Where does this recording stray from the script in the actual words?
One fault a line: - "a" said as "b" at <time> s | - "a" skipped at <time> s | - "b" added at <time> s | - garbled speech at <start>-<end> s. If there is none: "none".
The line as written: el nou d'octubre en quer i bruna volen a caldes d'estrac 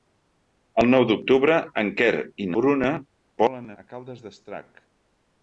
none